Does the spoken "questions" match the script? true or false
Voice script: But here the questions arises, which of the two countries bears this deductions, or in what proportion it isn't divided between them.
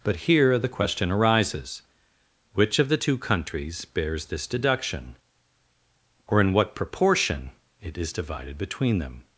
false